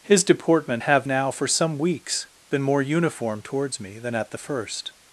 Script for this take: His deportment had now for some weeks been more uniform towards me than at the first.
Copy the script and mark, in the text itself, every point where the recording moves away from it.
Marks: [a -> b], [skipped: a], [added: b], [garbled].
His deportment [had -> have] now for some weeks been more uniform towards me than at the first.